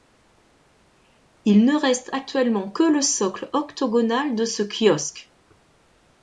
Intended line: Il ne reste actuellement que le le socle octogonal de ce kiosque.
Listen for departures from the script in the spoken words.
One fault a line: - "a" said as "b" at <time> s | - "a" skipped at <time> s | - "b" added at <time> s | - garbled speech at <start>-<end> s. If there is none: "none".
- "le" skipped at 3.0 s